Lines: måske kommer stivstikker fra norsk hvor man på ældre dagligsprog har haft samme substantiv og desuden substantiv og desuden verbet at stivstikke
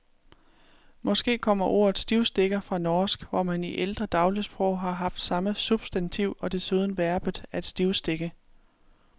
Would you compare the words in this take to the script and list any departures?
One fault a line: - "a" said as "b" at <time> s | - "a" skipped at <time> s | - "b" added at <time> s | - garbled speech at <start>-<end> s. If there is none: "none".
- "ordet" added at 1.6 s
- "på" said as "i" at 3.6 s
- "substantiv og desuden" skipped at 7.0 s